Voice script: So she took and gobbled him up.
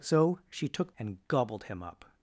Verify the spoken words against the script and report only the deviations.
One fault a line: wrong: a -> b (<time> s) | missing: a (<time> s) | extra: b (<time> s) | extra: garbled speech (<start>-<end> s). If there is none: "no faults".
no faults